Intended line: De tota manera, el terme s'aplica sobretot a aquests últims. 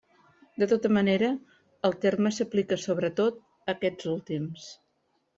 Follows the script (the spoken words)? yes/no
yes